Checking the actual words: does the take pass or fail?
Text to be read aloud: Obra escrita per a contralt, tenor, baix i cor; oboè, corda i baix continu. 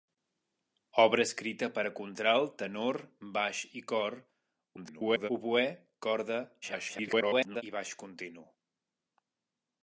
fail